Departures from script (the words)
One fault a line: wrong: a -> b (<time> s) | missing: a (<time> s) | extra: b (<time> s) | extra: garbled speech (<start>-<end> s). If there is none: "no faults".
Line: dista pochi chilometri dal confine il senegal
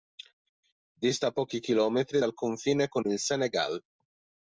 extra: con (2.9 s)